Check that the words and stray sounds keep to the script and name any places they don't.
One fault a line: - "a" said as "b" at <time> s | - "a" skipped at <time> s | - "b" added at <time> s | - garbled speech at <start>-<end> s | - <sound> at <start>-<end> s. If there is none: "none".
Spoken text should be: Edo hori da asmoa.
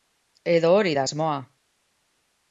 none